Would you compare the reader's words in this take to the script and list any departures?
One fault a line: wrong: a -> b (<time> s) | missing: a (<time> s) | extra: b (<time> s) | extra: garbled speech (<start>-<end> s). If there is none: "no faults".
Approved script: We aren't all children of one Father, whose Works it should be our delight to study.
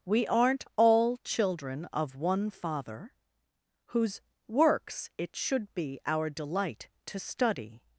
no faults